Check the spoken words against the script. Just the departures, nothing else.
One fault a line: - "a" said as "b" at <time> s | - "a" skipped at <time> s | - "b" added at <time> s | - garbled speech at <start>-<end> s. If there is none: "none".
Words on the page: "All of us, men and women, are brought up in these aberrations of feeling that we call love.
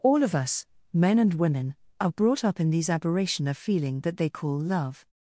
- "aberrations" said as "aberration" at 2.9 s
- "we" said as "they" at 4.2 s